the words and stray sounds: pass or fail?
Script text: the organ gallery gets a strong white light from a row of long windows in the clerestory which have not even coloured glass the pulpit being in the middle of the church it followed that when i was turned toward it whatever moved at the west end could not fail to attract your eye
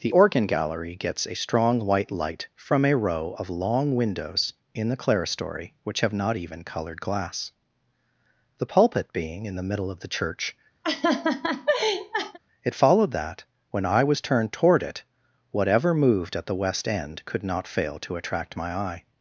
fail